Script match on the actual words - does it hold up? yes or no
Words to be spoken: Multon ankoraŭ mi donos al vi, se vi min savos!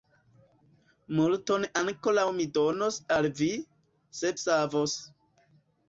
no